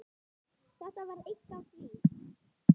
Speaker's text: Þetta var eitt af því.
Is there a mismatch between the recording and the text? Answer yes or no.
no